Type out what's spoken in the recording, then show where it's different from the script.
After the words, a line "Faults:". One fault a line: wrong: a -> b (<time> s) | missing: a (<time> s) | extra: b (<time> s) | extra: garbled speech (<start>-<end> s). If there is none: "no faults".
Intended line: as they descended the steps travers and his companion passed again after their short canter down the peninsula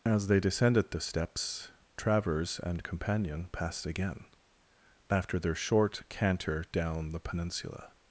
as they descended the steps travers and companion passed again after their short canter down the peninsula
Faults:
missing: his (2.8 s)